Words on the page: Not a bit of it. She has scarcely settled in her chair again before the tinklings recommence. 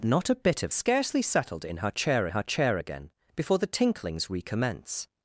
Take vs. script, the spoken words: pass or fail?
fail